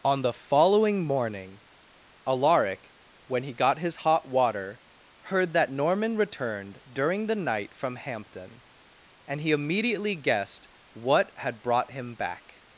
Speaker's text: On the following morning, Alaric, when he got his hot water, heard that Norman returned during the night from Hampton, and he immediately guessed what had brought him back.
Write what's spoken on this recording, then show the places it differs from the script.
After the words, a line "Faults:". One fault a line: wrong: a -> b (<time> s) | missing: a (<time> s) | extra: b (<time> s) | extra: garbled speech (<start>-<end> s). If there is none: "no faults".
On the following morning, Alaric, when he got his hot water, heard that Norman returned during the night from Hampton, and he immediately guessed what had brought him back.
Faults:
no faults